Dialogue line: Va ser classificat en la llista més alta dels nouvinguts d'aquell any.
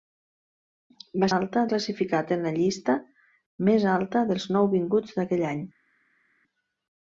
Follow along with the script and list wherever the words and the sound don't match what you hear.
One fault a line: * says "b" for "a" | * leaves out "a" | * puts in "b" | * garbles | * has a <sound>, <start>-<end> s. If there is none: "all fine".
* says "alta" for "ser"